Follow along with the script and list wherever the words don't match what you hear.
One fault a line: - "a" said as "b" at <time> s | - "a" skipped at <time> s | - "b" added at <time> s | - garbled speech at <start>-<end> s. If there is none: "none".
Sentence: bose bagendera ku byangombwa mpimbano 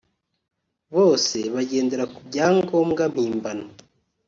none